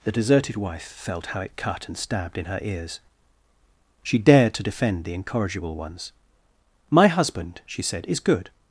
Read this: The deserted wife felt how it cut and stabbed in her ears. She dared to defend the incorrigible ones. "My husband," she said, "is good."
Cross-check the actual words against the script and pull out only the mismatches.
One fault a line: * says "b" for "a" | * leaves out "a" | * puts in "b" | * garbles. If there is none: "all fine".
all fine